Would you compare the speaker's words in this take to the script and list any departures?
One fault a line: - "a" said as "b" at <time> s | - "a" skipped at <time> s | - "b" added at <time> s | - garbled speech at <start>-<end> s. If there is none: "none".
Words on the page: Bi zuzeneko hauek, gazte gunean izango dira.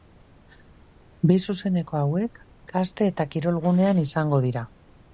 - "eta kirol" added at 3.1 s